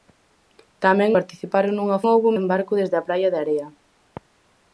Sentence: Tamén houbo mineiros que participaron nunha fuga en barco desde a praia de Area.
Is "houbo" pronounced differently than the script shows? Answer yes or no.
yes